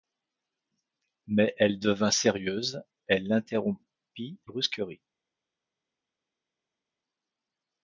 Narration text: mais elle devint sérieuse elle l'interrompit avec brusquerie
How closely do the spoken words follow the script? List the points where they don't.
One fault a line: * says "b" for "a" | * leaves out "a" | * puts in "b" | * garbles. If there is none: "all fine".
* leaves out "avec"